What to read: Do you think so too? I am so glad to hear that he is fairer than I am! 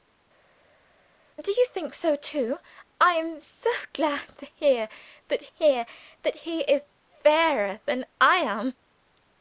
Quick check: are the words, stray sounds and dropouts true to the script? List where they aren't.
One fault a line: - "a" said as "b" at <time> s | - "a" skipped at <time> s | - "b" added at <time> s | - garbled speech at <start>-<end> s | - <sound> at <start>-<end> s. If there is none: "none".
- "hear that" added at 5.5 s